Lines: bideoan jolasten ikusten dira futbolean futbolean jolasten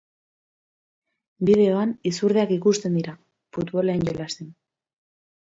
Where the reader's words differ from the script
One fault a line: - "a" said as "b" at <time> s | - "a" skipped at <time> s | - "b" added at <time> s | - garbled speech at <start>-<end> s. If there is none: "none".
- "jolasten" said as "izurdeak" at 2.1 s
- "futbolean" skipped at 4.1 s